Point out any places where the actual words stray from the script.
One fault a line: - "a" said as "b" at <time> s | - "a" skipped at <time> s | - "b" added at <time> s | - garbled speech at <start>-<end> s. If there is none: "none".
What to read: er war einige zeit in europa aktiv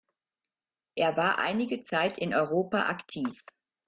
none